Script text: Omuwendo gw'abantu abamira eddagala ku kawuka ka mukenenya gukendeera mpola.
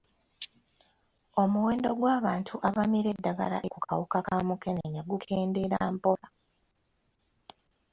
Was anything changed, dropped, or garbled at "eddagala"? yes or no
no